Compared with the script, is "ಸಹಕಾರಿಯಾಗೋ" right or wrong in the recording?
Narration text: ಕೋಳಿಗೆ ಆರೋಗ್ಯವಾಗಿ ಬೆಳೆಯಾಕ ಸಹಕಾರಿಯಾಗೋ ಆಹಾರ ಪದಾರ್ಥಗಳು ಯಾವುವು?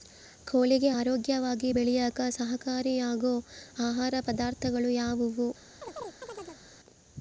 right